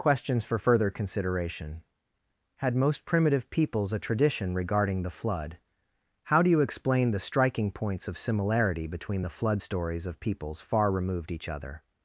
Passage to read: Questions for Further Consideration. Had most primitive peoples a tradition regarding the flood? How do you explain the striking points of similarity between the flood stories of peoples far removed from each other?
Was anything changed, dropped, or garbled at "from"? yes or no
yes